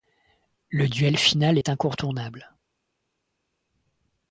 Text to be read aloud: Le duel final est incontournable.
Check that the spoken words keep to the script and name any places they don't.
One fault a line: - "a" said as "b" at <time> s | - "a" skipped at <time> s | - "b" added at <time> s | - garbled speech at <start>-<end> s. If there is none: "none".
none